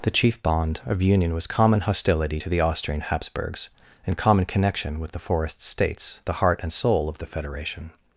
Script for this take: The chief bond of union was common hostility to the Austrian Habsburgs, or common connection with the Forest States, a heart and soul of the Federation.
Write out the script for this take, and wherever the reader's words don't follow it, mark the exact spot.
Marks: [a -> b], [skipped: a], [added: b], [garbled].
The chief bond of union was common hostility to the Austrian Habsburgs, [or -> and] common connection with the Forest States, [a -> the] heart and soul of the Federation.